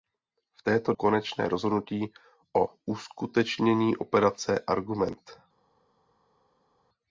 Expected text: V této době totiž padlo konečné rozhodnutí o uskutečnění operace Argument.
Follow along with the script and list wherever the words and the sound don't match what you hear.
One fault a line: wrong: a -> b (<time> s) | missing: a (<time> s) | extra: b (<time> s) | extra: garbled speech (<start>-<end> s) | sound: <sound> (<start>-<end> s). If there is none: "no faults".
missing: době totiž padlo (0.9 s)